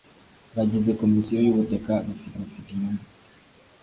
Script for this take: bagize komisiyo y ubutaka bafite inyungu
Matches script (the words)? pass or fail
fail